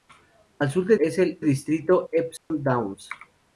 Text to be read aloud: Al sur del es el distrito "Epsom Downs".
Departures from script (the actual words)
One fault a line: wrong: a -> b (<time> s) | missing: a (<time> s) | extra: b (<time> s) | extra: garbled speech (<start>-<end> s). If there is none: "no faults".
no faults